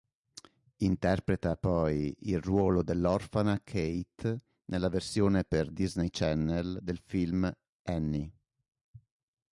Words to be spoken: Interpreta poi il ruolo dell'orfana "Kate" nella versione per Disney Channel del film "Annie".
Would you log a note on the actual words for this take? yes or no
no